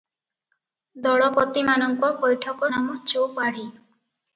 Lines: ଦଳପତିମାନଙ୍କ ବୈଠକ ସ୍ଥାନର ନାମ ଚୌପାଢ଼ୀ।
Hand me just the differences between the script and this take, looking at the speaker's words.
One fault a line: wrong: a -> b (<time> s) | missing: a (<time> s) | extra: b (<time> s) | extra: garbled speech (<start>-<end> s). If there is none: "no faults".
missing: ସ୍ଥାନର (2.7 s)